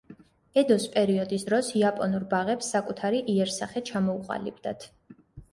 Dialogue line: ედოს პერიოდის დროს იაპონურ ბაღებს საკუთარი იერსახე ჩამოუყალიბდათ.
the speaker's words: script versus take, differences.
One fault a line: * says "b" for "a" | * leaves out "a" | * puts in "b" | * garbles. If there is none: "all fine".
all fine